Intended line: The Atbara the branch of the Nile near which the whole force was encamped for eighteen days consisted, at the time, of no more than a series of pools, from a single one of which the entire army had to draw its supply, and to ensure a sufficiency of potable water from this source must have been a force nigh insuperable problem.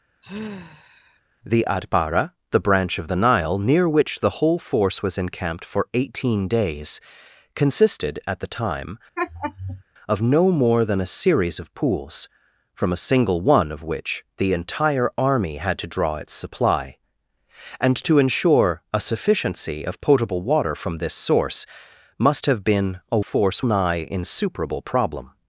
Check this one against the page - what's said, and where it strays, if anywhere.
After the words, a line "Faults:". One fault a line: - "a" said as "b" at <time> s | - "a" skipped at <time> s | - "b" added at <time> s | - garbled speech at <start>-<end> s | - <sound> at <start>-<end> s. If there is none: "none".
The Atbara the branch of the Nile near which the whole force was encamped for eighteen days consisted, at the time, of no more than a series of pools, from a single one of which the entire army had to draw its supply, and to ensure a sufficiency of potable water from this source must have been a force nigh insuperable problem.
Faults:
- sigh at 0.2-1.2 s
- laugh at 9.2-9.8 s